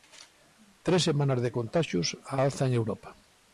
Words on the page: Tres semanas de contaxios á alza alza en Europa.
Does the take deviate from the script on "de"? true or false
false